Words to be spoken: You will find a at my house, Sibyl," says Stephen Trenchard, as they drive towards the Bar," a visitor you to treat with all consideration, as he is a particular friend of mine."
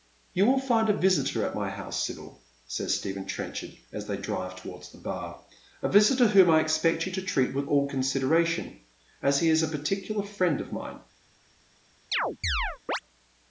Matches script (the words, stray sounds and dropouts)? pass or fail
fail